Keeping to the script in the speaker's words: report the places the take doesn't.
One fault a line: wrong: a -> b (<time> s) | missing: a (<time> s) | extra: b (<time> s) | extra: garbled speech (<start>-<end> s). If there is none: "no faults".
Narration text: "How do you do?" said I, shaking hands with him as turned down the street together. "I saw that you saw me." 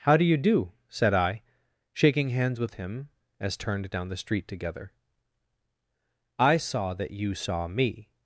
no faults